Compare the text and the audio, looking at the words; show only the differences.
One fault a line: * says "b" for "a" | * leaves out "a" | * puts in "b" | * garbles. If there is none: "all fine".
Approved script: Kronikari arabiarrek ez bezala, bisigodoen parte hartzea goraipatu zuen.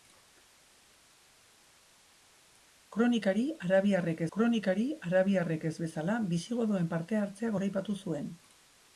* puts in "kronikari arabiarrek"